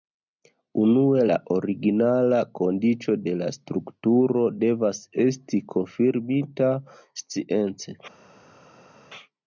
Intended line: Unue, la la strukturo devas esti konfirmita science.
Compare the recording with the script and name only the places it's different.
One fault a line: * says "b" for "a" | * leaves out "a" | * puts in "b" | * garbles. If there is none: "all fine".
* puts in "originala kondiĉo de"